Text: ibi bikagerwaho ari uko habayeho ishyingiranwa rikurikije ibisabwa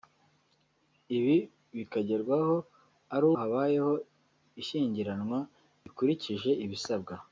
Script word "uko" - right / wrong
wrong